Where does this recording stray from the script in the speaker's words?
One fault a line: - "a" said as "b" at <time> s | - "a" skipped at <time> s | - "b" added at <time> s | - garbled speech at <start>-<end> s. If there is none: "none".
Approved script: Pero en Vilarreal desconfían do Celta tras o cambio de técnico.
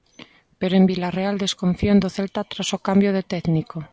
none